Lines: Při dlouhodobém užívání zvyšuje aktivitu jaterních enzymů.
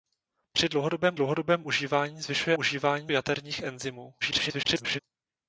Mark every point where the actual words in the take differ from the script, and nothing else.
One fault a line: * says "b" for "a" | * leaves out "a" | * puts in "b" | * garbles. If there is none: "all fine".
* puts in "dlouhodobém"
* says "užívání" for "aktivitu"
* garbles